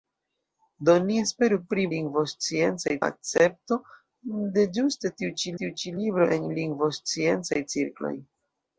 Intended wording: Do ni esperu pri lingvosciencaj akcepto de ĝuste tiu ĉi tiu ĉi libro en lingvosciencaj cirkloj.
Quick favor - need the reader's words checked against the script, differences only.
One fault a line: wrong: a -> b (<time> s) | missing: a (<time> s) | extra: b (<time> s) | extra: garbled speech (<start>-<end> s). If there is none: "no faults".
no faults